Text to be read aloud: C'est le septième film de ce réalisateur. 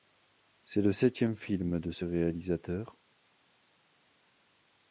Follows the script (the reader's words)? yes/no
yes